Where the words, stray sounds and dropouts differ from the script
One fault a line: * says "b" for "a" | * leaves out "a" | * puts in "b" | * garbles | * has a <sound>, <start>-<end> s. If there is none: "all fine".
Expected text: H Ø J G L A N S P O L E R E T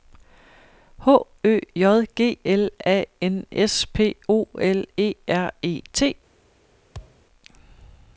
* has a thud, 6.9-7.3 s